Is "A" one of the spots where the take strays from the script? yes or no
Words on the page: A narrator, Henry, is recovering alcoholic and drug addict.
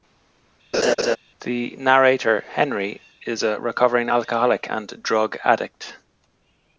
yes